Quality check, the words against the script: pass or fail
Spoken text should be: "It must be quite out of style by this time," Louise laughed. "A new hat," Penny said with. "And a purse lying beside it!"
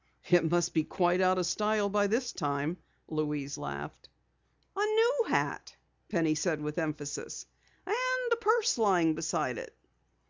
fail